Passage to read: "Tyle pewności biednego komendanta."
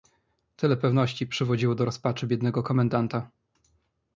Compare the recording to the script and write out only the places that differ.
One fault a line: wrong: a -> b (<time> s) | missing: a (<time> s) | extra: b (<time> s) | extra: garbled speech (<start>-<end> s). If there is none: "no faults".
extra: przywodziło do rozpaczy (1.3 s)